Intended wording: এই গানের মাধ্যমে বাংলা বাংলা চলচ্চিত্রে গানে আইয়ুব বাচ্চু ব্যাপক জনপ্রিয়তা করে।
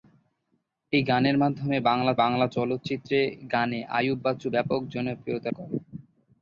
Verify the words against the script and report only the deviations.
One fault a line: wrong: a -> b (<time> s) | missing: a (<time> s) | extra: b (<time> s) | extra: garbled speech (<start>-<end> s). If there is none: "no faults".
no faults